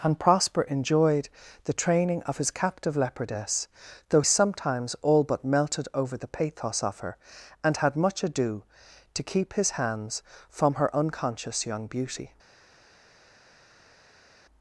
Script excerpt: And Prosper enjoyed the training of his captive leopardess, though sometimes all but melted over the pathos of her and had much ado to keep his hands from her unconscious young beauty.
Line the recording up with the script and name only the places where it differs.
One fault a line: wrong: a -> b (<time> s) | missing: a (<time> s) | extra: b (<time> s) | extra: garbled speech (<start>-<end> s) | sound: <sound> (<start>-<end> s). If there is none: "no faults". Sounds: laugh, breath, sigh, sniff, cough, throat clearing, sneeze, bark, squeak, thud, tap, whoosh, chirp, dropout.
no faults